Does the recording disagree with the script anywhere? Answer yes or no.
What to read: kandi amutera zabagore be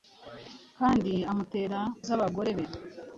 no